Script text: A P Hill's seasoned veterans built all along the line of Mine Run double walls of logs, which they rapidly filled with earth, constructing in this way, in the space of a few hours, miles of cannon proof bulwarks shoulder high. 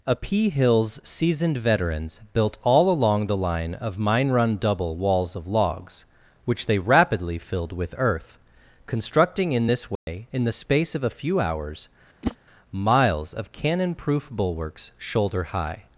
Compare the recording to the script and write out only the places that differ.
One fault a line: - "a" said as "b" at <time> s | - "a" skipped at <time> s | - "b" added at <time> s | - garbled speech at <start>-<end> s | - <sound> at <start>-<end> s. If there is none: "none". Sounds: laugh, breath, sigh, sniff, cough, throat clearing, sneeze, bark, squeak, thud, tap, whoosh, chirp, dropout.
- dropout at 10.0-10.1 s
- whoosh at 12.2-12.4 s